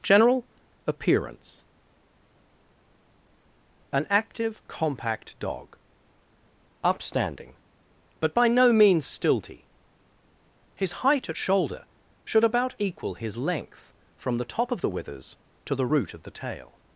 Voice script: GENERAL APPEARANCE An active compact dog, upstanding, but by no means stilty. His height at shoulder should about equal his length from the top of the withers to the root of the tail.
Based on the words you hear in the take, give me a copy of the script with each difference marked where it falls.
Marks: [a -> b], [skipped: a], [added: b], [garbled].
GENERAL APPEARANCE An active compact dog, upstanding, but by no means stilty. His height at shoulder should about equal his length from the top of the withers to the root of the tail.